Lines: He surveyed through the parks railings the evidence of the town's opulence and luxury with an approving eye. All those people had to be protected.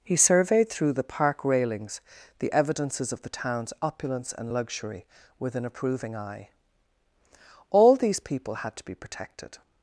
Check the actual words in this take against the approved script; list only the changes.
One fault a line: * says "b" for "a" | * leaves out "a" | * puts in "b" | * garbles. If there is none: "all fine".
* says "park" for "parks"
* says "evidences" for "evidence"
* says "these" for "those"